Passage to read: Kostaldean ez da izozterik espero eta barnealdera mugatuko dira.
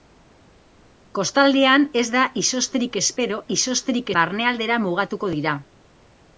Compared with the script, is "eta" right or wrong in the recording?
wrong